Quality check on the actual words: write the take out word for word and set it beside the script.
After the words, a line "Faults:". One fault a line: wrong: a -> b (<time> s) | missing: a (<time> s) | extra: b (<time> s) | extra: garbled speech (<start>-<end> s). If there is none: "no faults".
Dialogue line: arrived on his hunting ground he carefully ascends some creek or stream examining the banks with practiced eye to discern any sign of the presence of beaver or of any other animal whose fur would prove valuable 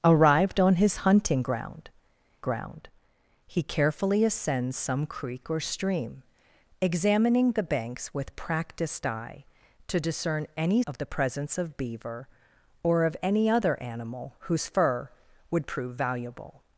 arrived on his hunting ground ground he carefully ascends some creek or stream examining the banks with practiced eye to discern any of the presence of beaver or of any other animal whose fur would prove valuable
Faults:
extra: ground (2.4 s)
missing: sign (10.8 s)